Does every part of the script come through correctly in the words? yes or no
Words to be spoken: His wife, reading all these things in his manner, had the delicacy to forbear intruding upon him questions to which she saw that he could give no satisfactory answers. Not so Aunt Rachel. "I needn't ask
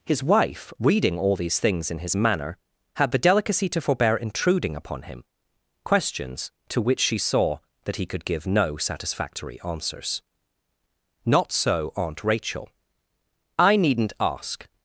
yes